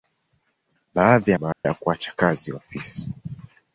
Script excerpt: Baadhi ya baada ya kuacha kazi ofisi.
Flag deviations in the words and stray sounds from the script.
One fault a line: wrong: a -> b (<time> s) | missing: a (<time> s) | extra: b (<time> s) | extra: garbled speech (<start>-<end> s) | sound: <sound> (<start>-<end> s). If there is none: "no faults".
sound: dropout (1.5-1.6 s)